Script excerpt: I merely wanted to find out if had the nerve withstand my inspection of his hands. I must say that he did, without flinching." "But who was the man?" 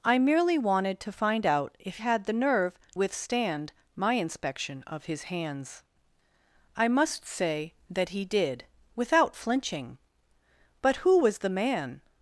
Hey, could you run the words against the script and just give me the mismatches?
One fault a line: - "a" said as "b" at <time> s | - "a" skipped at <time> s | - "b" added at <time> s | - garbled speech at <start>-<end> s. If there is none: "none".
none